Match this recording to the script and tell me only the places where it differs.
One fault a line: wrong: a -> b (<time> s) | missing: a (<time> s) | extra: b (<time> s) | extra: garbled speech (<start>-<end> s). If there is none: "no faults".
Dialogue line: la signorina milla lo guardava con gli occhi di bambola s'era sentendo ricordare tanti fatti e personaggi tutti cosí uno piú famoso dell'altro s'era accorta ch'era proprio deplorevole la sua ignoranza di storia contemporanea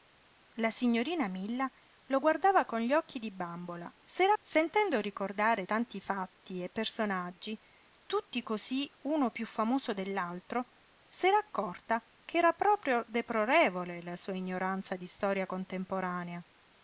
no faults